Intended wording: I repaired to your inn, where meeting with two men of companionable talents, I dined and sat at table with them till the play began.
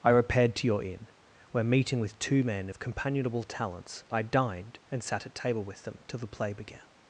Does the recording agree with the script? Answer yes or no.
yes